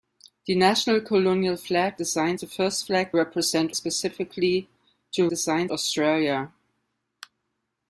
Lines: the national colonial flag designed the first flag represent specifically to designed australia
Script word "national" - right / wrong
right